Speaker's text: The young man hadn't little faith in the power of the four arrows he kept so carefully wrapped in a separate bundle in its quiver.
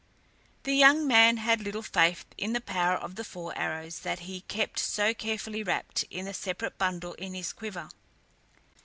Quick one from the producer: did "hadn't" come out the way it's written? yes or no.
no